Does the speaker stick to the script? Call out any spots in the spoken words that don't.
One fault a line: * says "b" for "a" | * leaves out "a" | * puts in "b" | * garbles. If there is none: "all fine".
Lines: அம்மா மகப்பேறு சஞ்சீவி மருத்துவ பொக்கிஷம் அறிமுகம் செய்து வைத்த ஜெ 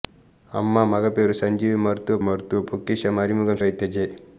* puts in "மருத்துவ"
* leaves out "செய்து"